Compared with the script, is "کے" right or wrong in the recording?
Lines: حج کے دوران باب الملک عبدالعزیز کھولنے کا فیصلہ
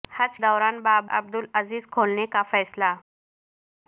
wrong